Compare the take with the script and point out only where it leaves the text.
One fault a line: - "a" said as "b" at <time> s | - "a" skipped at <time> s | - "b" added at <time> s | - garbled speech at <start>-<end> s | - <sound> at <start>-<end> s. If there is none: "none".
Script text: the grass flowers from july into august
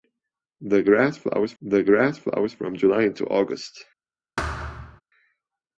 - "the grass flowers" added at 1.6 s
- thud at 4.4-5.0 s